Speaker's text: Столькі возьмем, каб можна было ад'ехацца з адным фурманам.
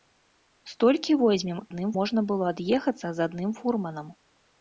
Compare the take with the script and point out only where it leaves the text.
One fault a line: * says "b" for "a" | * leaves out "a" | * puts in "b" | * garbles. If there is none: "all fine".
* says "адным" for "каб"